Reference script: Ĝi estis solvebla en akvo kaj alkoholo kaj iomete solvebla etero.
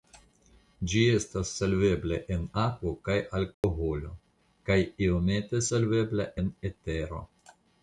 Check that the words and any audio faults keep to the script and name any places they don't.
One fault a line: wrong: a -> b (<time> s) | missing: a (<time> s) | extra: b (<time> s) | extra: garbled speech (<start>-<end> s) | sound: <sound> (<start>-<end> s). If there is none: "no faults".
wrong: estis -> estas (1.2 s)
sound: dropout (3.5-3.6 s)
extra: en (6.4 s)